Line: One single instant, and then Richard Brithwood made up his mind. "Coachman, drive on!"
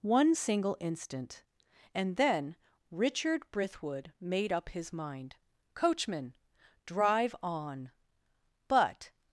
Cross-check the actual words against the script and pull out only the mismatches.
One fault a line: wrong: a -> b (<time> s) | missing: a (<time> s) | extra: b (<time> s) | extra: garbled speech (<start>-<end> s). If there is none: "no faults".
extra: But (8.7 s)